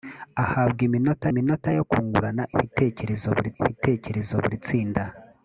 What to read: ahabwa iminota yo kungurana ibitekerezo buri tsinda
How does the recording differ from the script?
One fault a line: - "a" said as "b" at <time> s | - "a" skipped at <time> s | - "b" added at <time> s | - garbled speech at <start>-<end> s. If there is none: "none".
- "iminota" added at 1.3 s
- "ibitekerezo buri" added at 3.6 s